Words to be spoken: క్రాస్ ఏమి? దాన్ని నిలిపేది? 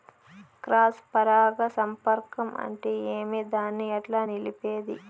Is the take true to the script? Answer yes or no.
no